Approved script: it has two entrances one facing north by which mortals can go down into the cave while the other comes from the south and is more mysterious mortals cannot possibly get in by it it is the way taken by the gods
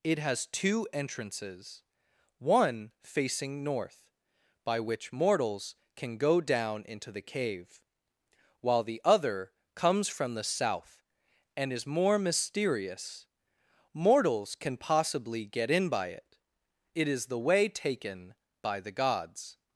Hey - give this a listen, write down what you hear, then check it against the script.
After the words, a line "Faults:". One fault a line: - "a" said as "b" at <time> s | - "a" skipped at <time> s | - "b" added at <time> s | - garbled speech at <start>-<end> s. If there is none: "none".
it has two entrances one facing north by which mortals can go down into the cave while the other comes from the south and is more mysterious mortals can possibly get in by it it is the way taken by the gods
Faults:
- "cannot" said as "can" at 14.6 s